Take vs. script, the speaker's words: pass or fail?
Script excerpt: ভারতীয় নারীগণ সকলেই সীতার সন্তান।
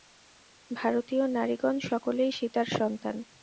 pass